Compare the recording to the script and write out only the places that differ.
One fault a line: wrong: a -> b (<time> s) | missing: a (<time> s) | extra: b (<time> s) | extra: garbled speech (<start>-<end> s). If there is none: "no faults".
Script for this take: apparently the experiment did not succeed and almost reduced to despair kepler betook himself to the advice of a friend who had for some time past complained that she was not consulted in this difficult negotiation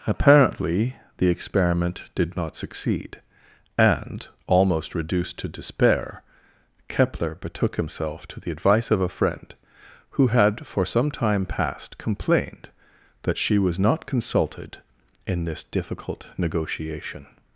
no faults